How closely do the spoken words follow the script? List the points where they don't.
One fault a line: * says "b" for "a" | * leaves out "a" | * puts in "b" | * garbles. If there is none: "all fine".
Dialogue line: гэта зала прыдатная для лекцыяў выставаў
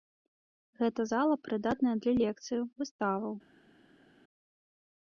all fine